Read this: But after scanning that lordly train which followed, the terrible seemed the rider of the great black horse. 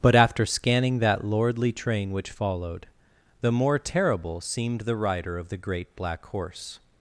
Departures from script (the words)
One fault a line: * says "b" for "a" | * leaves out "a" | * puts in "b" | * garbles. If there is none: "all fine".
* puts in "more"